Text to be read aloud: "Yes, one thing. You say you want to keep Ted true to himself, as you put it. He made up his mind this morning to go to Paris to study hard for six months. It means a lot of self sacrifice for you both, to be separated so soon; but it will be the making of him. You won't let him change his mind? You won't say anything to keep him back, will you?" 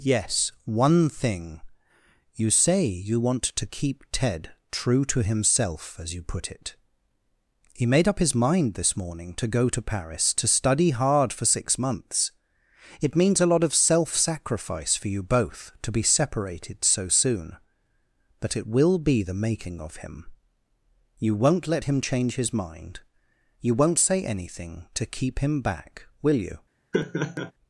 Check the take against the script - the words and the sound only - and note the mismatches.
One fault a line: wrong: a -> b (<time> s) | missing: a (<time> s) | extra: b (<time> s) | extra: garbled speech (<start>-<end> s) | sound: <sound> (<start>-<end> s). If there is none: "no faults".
sound: laugh (26.9-27.5 s)